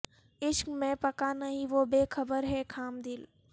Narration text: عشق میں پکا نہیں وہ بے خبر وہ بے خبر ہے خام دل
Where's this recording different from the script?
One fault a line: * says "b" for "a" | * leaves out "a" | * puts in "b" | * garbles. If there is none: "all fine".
* leaves out "وہ بے خبر"